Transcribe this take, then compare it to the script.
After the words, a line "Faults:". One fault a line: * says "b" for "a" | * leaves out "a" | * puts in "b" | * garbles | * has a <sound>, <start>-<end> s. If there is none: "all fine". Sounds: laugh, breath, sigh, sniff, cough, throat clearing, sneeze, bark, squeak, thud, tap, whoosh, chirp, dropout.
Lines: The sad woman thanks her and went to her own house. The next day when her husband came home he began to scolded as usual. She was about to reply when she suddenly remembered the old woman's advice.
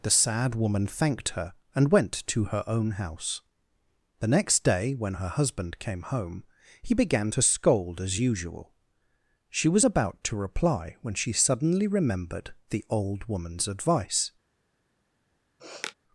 The sad woman thanked her and went to her own house. The next day when her husband came home he began to scold as usual. She was about to reply when she suddenly remembered the old woman's advice.
Faults:
* says "thanked" for "thanks"
* says "scold" for "scolded"
* has a sniff, 15.6-15.9 s